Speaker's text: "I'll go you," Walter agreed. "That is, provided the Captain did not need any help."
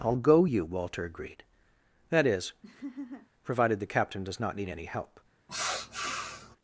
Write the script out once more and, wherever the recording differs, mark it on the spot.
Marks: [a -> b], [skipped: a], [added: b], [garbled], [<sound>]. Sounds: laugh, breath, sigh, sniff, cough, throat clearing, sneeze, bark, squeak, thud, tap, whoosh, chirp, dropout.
"I'll go you," Walter agreed. "That is, [laugh] provided the Captain [did -> does] not need any help." [sniff]